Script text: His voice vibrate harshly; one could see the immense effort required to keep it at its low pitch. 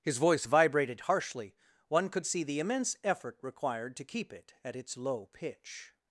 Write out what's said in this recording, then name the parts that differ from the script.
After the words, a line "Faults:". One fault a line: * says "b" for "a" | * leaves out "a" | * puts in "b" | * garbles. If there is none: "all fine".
His voice vibrated harshly; one could see the immense effort required to keep it at its low pitch.
Faults:
* says "vibrated" for "vibrate"